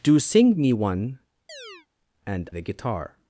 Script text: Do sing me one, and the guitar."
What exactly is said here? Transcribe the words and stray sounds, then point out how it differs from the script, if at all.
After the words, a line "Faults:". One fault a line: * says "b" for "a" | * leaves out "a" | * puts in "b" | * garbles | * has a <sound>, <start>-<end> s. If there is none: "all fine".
Do sing me one, and the guitar."
Faults:
* has a chirp, 1.5-1.9 s